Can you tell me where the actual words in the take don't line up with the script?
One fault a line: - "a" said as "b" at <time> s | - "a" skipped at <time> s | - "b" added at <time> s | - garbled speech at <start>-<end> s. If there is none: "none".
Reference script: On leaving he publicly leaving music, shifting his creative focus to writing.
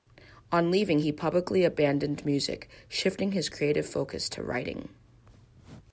- "leaving" said as "abandoned" at 1.6 s